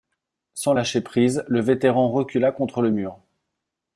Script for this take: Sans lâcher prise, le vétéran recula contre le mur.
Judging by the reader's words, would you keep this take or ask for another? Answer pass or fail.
pass